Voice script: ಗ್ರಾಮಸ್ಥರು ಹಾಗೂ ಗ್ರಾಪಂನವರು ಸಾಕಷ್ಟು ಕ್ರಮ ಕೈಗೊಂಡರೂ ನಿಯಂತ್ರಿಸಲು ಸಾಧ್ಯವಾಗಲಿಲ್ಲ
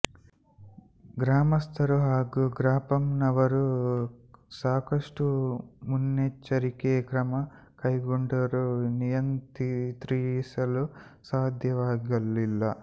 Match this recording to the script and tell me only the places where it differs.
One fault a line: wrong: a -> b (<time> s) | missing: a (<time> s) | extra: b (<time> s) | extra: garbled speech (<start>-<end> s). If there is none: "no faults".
extra: ಮುನ್ನೆಚ್ಚರಿಕೆ (5.9 s)